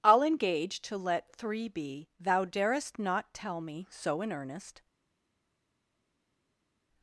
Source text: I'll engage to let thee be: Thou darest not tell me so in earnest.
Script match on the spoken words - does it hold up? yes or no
no